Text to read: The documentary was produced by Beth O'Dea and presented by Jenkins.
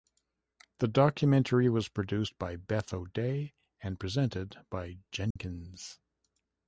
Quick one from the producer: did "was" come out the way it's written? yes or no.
yes